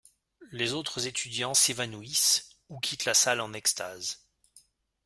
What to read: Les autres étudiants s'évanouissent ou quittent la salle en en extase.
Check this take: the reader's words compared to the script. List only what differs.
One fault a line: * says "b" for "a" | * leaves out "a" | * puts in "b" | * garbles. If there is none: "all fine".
* leaves out "en"